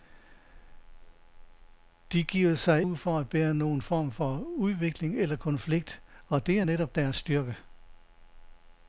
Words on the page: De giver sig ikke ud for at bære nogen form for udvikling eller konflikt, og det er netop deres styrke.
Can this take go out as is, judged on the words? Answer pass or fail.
fail